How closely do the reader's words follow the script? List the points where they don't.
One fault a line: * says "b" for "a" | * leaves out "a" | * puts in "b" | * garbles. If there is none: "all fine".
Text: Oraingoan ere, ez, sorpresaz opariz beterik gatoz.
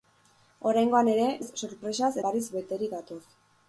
all fine